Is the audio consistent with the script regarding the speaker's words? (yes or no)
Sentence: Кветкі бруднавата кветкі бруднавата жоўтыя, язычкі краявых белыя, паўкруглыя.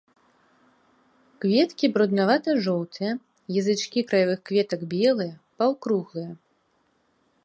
no